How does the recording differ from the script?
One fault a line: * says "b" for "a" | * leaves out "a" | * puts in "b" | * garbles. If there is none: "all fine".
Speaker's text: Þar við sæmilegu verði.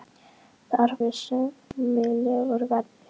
all fine